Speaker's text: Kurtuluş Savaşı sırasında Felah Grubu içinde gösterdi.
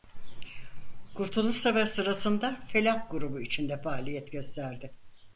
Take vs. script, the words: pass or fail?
fail